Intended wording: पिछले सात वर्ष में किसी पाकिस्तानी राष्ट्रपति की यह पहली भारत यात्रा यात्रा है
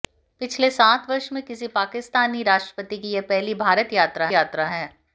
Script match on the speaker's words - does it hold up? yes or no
yes